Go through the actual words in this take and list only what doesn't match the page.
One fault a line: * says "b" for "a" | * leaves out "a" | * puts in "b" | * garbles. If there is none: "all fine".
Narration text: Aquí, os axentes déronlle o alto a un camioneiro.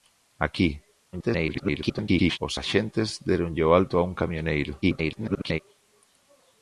* garbles
* garbles